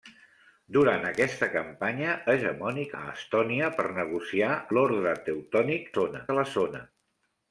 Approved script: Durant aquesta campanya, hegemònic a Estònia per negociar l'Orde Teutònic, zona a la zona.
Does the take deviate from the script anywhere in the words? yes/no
no